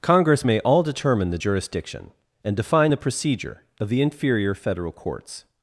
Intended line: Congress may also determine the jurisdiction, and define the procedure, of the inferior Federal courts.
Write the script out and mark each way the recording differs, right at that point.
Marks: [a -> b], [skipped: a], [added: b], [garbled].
Congress may [also -> all] determine the jurisdiction, and define the procedure, of the inferior Federal courts.